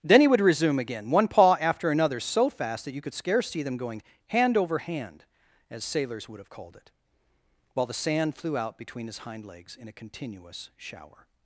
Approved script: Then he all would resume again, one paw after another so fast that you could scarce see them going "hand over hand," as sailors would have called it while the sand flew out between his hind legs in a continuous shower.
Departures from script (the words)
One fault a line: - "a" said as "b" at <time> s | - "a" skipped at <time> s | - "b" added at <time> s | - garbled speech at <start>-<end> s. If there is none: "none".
- "all" skipped at 0.3 s